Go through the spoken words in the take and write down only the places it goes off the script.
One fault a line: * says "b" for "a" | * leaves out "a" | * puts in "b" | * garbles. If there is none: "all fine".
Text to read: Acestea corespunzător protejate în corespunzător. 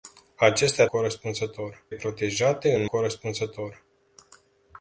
all fine